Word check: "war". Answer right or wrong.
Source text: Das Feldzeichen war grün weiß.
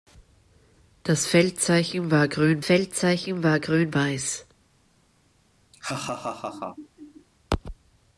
right